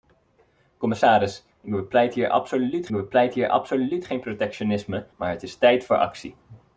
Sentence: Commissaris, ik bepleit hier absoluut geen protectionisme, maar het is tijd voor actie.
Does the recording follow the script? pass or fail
fail